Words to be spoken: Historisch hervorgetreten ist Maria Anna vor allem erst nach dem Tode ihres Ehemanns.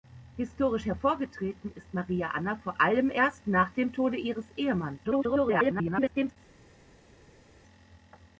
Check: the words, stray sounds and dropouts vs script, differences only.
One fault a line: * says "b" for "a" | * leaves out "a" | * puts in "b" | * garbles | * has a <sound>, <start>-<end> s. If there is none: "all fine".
* garbles